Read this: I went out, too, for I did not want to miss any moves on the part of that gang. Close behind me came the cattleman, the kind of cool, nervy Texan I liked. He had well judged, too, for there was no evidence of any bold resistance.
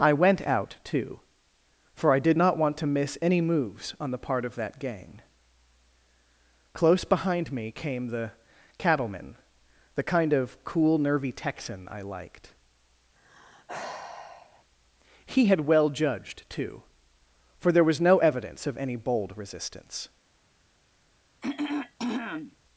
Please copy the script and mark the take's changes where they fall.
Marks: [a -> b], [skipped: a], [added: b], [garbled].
I went out, too, for I did not want to miss any moves on the part of that gang. Close behind me came the cattleman, the kind of cool, nervy Texan I liked. He had well judged, too, for there was no evidence of any bold resistance.